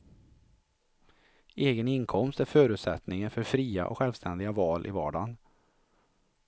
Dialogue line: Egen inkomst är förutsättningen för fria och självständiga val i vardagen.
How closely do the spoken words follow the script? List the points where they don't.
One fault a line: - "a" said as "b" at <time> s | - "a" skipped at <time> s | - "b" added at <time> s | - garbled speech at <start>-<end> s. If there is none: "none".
none